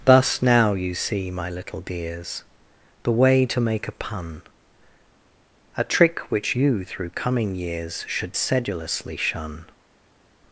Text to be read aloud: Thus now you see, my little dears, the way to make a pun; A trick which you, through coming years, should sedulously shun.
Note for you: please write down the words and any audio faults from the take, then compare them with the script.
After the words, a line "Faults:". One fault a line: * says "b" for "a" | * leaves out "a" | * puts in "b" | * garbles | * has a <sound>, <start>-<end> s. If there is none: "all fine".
Thus now you see, my little dears, the way to make a pun; A trick which you, through coming years, should sedulously shun.
Faults:
all fine